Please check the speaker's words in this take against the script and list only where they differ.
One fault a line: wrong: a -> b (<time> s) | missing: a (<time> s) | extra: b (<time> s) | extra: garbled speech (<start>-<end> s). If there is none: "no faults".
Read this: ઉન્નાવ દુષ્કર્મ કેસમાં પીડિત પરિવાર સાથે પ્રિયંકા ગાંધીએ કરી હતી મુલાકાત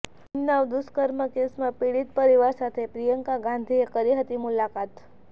no faults